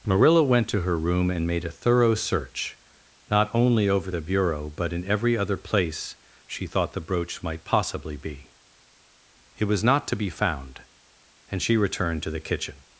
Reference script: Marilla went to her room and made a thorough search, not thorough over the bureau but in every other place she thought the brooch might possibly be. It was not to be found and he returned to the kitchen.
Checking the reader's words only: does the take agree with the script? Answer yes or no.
no